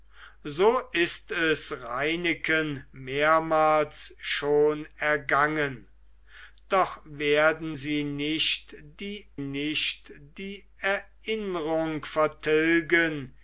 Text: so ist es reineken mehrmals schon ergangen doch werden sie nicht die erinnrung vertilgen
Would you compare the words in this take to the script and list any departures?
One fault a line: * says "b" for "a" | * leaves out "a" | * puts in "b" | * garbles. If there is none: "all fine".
* puts in "nicht die"